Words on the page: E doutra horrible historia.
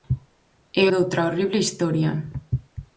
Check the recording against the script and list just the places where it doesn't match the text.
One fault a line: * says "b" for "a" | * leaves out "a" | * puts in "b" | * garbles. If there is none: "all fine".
all fine